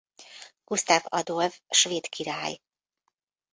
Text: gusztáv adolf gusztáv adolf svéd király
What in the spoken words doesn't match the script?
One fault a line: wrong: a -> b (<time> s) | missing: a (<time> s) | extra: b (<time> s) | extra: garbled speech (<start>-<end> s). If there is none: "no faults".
missing: gusztáv adolf (1.6 s)